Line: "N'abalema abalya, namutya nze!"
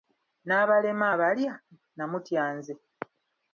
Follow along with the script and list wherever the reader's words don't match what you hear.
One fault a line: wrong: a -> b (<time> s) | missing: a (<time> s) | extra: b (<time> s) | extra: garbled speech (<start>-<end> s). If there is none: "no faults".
no faults